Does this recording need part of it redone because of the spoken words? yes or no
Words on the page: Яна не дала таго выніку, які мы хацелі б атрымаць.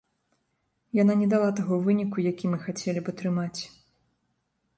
no